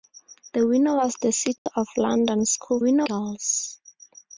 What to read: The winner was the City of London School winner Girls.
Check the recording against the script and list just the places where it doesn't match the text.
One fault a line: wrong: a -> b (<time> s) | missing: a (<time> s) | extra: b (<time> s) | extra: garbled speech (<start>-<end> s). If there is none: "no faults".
no faults